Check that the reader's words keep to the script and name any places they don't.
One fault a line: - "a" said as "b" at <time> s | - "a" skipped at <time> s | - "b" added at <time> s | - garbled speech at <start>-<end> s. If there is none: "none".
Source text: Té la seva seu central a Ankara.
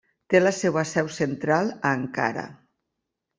none